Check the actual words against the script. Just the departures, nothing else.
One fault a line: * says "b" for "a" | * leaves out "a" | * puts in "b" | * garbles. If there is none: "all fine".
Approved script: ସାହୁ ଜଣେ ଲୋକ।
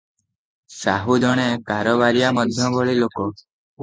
* puts in "କାରବାରିଆ ମଧ୍ୟଭଳି"